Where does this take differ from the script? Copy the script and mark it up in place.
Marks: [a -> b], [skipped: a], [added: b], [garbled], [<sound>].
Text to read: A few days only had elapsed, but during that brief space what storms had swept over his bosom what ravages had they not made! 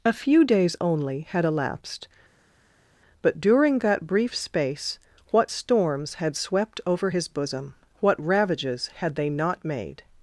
A few days only had elapsed, but during that brief space what storms had swept over his bosom what ravages had they not made!